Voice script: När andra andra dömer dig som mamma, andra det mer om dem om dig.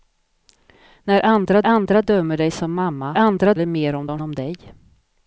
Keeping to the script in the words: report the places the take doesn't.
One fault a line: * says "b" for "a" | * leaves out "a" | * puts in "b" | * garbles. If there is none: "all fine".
all fine